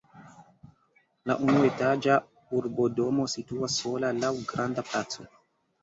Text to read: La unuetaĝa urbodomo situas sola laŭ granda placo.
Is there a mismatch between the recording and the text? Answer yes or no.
no